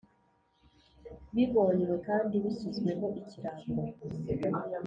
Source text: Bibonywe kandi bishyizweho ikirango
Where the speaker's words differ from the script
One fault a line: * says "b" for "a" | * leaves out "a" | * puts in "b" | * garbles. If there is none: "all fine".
all fine